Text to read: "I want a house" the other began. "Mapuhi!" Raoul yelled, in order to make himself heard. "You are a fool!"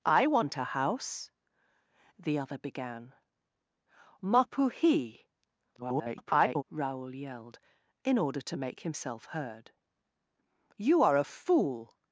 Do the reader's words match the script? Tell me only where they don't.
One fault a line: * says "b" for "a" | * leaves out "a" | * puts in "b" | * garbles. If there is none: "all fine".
* garbles